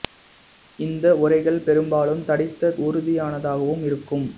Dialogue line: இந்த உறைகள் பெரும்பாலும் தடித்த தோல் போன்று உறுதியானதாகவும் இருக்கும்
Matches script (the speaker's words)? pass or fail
fail